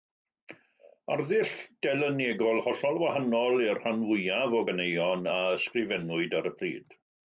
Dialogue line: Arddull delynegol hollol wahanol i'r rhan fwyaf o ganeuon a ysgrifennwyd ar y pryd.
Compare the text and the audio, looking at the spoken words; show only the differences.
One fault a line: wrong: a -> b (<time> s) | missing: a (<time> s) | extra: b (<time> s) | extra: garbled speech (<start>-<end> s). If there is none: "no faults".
no faults